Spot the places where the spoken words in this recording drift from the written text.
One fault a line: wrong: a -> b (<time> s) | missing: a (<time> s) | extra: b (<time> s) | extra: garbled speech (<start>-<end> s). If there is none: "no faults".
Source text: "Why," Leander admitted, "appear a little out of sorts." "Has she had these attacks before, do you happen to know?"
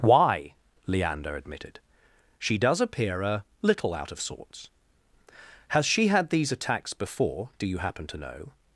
extra: she does (2.4 s)